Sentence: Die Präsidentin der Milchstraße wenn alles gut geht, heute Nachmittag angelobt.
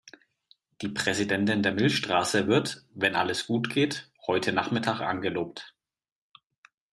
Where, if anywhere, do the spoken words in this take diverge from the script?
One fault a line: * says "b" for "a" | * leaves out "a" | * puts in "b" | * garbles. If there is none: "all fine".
* puts in "wird"